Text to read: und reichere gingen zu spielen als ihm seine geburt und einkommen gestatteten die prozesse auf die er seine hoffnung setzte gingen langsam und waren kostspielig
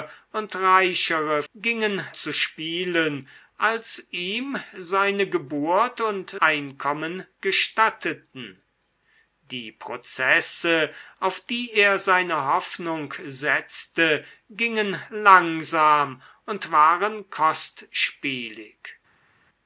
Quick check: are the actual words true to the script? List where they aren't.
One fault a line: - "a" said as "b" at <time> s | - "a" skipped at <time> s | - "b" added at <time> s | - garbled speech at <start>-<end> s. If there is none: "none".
none